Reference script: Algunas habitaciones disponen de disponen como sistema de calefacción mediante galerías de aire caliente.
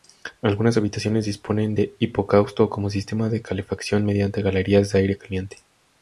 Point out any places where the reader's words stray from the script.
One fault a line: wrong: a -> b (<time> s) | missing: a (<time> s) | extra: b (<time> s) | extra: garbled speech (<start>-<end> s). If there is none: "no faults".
wrong: disponen -> hipocausto (2.0 s)